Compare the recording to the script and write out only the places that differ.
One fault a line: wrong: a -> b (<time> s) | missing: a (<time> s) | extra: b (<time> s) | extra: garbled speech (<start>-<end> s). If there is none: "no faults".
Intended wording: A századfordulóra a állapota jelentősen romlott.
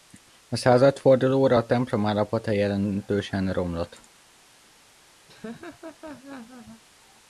extra: templom (1.7 s)